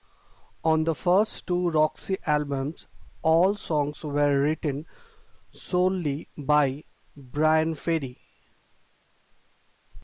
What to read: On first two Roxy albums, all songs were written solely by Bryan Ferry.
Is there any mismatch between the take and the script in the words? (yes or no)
yes